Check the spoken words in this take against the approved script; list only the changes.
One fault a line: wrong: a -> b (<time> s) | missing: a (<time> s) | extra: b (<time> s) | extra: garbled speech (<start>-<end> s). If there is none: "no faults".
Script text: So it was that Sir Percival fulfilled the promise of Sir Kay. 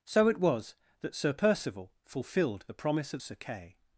no faults